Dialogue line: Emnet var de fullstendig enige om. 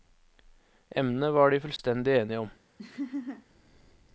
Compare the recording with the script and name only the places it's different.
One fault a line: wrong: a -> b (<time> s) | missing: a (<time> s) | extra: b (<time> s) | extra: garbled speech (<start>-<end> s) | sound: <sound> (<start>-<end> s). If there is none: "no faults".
sound: dropout (1.8-1.8 s)
sound: laugh (2.8-3.5 s)